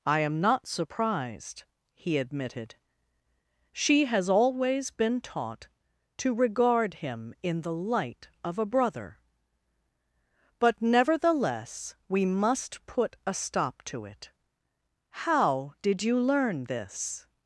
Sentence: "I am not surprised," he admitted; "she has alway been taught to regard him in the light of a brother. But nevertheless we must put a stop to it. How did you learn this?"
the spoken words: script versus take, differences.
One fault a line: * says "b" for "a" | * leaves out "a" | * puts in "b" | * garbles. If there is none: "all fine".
* says "always" for "alway"